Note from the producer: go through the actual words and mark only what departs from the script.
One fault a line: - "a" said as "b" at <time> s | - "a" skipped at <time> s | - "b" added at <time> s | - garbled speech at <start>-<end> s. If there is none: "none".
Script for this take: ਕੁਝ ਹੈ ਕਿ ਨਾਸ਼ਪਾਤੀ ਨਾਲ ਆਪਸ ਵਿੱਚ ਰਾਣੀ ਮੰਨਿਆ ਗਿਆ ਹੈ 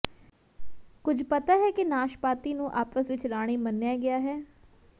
- "ਪਤਾ" added at 1.2 s
- "ਨਾਲ" said as "ਨੂੰ" at 2.5 s